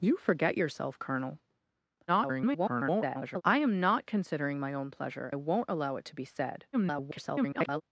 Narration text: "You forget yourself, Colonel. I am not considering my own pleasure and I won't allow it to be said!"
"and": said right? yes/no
no